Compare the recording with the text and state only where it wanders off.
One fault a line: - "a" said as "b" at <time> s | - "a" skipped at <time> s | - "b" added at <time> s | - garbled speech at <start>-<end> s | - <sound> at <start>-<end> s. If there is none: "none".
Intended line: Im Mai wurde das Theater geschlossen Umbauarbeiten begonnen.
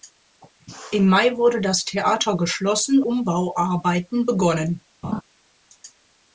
- laugh at 5.0-5.2 s